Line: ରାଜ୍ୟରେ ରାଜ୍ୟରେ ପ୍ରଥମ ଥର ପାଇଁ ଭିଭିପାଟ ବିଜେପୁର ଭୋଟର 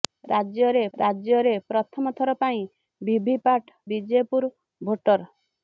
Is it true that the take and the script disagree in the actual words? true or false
false